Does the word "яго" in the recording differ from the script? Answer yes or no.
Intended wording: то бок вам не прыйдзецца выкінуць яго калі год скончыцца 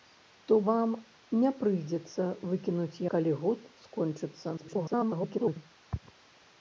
yes